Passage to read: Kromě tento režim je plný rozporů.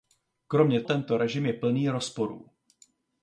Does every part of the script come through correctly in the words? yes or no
yes